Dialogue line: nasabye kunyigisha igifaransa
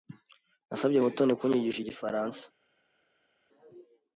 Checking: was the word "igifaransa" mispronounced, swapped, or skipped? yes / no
no